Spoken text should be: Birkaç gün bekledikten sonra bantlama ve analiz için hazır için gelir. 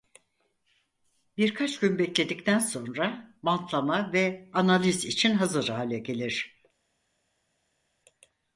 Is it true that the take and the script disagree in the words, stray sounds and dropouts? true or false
true